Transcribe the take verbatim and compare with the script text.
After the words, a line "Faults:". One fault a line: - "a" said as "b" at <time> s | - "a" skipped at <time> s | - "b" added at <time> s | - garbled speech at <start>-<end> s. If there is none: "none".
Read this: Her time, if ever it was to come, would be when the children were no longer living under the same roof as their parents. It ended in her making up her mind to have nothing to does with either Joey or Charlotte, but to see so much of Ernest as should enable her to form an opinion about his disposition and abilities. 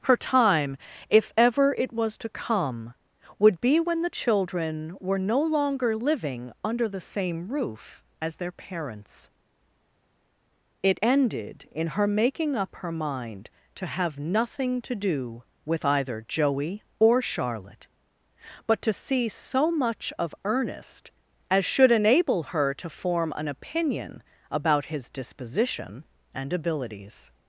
Her time, if ever it was to come, would be when the children were no longer living under the same roof as their parents. It ended in her making up her mind to have nothing to do with either Joey or Charlotte, but to see so much of Ernest as should enable her to form an opinion about his disposition and abilities.
Faults:
- "does" said as "do" at 14.9 s